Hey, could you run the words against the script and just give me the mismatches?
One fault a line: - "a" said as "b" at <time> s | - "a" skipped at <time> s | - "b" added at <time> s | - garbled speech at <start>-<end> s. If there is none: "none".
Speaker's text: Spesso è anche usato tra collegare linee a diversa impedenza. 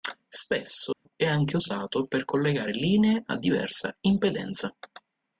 - "tra" said as "per" at 2.1 s